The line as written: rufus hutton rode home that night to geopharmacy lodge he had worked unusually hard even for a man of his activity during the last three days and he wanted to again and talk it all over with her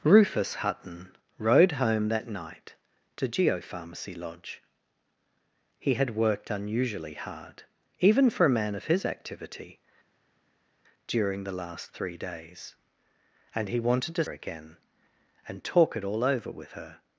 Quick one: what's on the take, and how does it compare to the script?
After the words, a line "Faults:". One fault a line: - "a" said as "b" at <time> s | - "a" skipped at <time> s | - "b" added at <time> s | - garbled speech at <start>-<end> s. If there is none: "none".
rufus hutton rode home that night to geopharmacy lodge he had worked unusually hard even for a man of his activity during the last three days and he wanted to again and talk it all over with her
Faults:
none